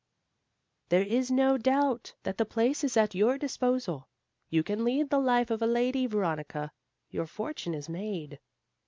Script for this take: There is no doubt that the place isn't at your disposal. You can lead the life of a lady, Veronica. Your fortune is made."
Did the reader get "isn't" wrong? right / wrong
wrong